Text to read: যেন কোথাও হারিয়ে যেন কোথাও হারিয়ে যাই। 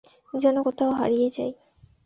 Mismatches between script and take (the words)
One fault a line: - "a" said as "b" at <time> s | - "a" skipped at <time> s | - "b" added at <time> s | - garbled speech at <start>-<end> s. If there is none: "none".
- "যেন কোথাও হারিয়ে" skipped at 1.3 s